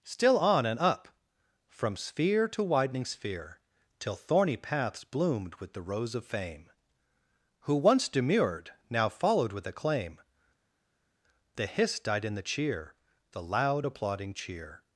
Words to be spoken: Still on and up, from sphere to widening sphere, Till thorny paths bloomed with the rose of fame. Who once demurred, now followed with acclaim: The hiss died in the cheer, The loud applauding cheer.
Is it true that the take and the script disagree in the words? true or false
false